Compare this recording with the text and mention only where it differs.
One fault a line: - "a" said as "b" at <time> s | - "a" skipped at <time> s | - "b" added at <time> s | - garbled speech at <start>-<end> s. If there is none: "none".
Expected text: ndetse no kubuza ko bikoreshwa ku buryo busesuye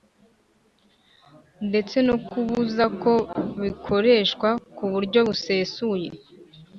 none